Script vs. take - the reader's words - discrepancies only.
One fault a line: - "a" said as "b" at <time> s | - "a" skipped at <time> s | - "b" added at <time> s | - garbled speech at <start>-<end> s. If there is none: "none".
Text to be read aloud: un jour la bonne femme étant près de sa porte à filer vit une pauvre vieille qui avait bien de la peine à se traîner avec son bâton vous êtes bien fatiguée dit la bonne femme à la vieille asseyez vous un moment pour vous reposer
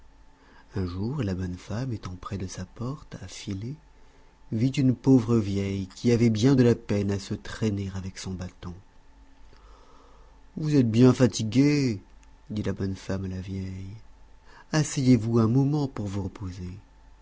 none